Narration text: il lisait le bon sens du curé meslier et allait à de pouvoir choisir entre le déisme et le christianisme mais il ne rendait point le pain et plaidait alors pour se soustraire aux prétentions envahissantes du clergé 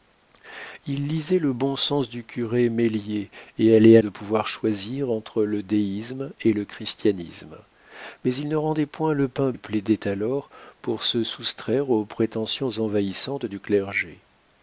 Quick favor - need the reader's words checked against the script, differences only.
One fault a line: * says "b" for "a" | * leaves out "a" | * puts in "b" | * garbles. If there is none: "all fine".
all fine